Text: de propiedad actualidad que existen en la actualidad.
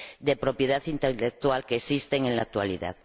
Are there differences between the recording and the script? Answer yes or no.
yes